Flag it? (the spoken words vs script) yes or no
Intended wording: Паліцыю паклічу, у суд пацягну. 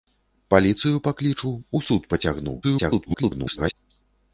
yes